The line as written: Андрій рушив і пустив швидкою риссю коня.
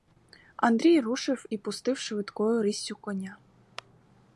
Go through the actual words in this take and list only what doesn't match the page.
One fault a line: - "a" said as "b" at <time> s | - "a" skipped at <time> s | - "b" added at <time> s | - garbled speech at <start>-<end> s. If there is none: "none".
none